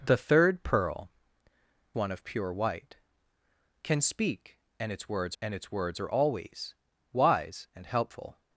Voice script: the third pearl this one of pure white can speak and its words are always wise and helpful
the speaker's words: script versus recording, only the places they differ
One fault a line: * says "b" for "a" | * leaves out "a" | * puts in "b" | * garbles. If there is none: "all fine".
* leaves out "this"
* puts in "and its words"